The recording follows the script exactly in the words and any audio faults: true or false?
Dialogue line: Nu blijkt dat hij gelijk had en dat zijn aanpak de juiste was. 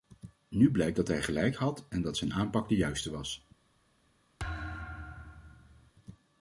false